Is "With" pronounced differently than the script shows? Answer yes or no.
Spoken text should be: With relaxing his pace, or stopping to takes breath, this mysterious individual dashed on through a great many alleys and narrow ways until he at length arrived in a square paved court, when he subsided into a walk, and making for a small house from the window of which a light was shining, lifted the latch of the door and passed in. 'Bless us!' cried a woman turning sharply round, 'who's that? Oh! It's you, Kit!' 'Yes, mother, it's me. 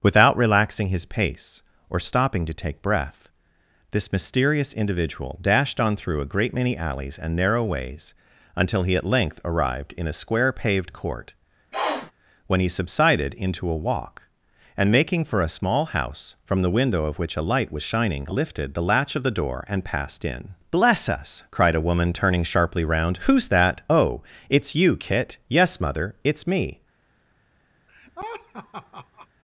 yes